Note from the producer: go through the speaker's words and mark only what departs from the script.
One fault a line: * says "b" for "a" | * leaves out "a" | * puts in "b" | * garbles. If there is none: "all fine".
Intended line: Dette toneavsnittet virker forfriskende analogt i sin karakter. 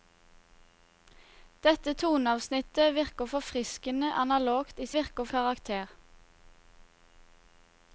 * says "virker" for "sin"